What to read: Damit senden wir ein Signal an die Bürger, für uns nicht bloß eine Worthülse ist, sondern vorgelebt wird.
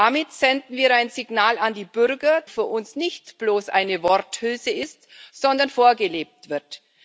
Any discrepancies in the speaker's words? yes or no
no